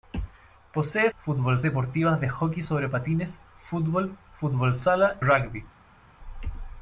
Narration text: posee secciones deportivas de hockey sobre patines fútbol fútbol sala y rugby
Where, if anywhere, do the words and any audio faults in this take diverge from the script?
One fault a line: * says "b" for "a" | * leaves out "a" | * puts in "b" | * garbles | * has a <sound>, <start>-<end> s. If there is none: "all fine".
* says "fútbol" for "secciones"
* leaves out "y"